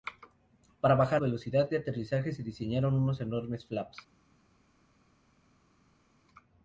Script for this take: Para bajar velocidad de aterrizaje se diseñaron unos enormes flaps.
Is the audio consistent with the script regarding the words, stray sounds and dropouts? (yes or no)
yes